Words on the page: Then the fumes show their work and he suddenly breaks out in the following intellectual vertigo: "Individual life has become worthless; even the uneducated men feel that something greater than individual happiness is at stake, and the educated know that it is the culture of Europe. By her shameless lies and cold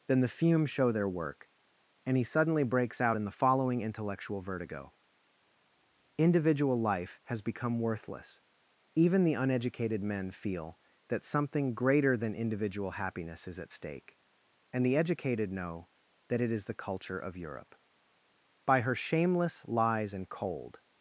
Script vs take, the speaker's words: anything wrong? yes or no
no